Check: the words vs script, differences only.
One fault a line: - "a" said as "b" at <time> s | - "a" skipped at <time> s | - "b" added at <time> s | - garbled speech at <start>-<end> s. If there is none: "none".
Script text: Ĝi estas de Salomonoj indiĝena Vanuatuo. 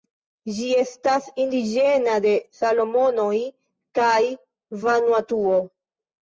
- "indiĝena" added at 1.4 s
- "indiĝena" said as "kaj" at 4.0 s